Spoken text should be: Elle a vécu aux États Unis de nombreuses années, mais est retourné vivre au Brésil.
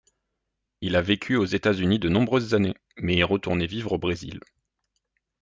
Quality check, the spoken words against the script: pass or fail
fail